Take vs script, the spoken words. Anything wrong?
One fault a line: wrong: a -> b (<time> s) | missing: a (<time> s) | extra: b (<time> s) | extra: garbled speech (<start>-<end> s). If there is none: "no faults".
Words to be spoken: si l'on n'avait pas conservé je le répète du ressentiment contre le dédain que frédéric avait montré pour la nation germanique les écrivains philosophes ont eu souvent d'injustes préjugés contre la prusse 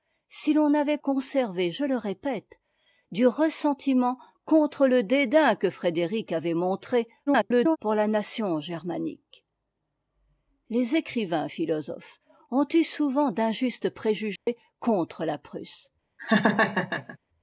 missing: pas (1.0 s)
extra: garbled speech (7.3-7.8 s)